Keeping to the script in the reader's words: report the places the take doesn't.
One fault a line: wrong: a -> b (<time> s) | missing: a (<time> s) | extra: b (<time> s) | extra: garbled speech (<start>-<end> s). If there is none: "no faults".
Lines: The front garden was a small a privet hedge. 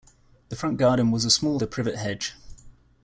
no faults